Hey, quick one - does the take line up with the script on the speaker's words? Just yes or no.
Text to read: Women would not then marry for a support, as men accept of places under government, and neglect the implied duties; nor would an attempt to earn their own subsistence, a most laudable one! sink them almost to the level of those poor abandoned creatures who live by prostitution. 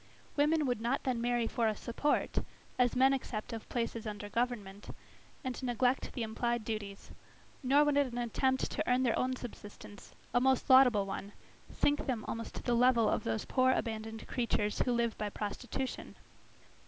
yes